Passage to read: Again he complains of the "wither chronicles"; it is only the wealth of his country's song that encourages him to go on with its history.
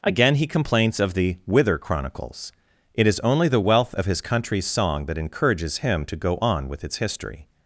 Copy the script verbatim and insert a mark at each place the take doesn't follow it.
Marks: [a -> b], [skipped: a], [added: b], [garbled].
Again he complains of the "wither chronicles"; it is only the wealth of his country's song that encourages him to go on with its history.